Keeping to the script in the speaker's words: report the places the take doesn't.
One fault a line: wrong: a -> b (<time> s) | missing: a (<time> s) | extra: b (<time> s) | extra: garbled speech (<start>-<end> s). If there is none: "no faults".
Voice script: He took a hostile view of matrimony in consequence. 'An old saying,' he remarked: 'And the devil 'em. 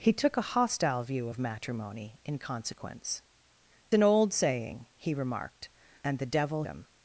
no faults